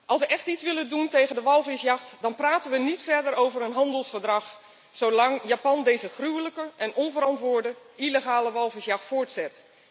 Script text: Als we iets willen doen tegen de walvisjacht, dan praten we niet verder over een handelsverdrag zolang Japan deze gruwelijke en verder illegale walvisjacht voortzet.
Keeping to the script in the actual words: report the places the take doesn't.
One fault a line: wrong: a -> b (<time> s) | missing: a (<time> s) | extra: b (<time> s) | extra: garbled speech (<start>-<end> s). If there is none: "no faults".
extra: echt (0.3 s)
wrong: verder -> onverantwoorde (6.9 s)